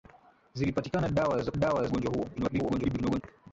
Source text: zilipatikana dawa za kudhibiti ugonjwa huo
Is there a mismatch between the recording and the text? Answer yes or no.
yes